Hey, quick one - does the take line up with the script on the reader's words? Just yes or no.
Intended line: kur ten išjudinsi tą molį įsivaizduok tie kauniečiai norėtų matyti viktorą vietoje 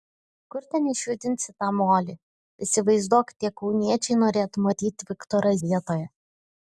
yes